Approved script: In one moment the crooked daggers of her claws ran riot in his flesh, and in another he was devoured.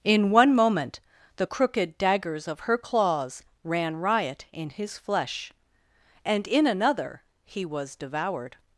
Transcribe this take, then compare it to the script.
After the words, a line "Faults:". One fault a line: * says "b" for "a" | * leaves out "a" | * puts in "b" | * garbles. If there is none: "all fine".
In one moment the crooked daggers of her claws ran riot in his flesh, and in another he was devoured.
Faults:
all fine